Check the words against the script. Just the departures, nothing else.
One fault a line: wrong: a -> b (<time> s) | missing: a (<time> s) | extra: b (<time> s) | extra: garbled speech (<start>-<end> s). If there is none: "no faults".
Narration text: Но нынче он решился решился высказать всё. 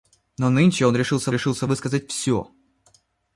no faults